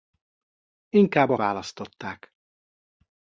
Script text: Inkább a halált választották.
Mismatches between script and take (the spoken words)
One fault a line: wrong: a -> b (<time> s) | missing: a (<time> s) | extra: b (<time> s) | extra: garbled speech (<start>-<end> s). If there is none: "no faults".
missing: halált (1.3 s)